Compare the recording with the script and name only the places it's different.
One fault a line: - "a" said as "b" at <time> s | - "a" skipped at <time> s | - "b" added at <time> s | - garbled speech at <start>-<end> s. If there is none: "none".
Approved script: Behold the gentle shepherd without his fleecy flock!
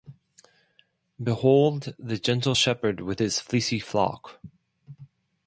- "without" said as "with" at 3.0 s